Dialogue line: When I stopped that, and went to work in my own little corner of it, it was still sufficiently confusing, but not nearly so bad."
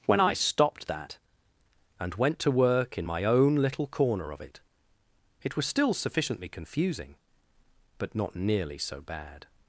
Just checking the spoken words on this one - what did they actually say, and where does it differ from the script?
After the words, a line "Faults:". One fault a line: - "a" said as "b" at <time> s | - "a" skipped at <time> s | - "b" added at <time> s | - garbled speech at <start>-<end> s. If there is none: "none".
When I stopped that, and went to work in my own little corner of it, it was still sufficiently confusing, but not nearly so bad."
Faults:
none